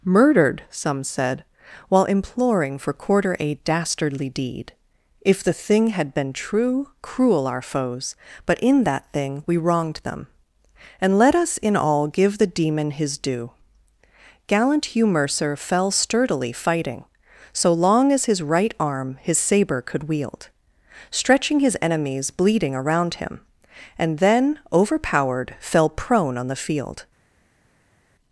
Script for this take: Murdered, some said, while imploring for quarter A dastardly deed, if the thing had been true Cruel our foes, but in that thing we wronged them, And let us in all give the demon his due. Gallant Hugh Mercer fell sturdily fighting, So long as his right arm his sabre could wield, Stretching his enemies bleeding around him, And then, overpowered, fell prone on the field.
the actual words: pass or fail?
pass